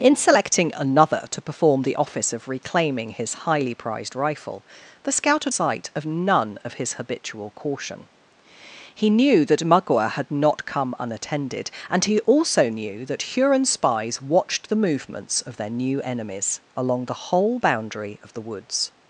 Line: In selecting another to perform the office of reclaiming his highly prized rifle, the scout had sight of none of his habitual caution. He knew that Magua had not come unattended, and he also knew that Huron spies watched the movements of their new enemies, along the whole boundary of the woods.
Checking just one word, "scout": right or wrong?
right